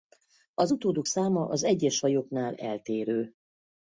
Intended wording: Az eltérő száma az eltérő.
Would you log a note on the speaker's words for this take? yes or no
yes